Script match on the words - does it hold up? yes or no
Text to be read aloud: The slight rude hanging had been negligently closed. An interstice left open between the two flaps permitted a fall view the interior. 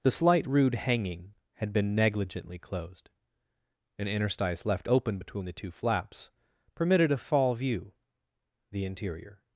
yes